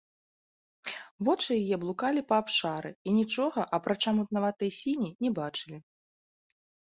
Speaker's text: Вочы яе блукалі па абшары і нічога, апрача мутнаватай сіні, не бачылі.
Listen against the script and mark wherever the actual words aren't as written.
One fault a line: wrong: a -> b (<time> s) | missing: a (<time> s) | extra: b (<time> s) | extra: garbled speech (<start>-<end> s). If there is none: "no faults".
no faults